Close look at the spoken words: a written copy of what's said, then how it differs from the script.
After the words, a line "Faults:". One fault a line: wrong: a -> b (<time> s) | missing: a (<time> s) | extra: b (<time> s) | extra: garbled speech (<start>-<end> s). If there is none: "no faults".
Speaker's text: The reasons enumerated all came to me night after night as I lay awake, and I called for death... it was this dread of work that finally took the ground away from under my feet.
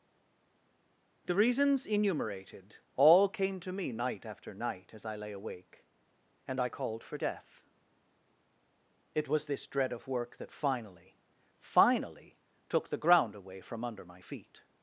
The reasons enumerated all came to me night after night as I lay awake, and I called for death... it was this dread of work that finally finally took the ground away from under my feet.
Faults:
extra: finally (11.6 s)